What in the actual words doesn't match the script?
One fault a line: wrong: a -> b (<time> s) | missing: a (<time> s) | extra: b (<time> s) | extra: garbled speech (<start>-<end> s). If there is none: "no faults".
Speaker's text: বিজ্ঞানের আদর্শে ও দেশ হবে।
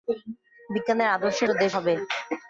no faults